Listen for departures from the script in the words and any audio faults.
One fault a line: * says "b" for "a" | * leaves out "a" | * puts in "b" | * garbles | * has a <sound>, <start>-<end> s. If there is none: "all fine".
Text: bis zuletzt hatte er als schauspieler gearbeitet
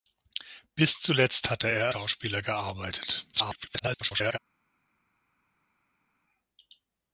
* leaves out "als"
* garbles